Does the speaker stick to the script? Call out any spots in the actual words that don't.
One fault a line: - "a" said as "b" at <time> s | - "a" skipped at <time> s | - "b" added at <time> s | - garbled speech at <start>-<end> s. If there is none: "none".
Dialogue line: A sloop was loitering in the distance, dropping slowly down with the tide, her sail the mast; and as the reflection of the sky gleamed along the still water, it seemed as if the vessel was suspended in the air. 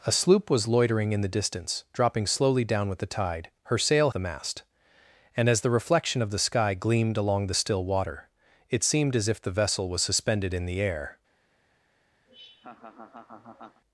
none